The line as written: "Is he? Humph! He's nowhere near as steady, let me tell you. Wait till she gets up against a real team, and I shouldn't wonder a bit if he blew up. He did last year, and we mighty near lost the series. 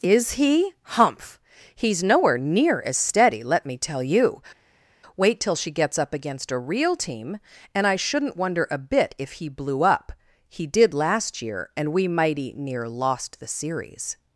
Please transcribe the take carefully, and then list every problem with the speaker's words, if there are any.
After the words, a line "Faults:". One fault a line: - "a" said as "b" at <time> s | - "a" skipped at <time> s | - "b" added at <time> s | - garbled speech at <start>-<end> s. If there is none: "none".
"Is he? Humph! He's nowhere near as steady, let me tell you. Wait till she gets up against a real team, and I shouldn't wonder a bit if he blew up. He did last year, and we mighty near lost the series.
Faults:
none